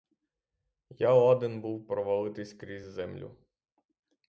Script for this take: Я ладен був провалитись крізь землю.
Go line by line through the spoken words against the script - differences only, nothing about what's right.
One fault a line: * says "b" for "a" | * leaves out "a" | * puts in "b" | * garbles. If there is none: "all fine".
all fine